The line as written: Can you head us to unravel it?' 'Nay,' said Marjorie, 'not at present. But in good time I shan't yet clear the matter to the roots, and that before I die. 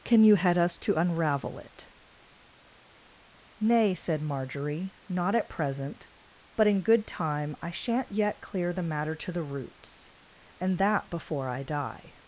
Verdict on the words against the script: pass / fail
pass